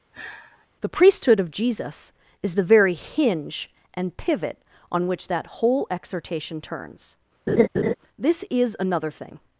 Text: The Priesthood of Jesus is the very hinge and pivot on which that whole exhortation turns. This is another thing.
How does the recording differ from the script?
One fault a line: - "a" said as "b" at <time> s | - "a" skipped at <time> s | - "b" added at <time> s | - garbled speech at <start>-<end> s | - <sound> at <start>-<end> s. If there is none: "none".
- sigh at 0.1-0.7 s
- laugh at 7.5-7.9 s